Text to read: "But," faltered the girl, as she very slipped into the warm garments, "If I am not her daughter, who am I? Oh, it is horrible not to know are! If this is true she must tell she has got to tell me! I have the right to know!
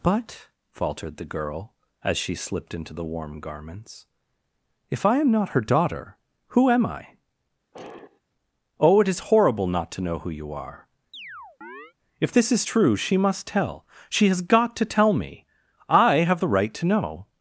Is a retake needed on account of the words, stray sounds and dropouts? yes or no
yes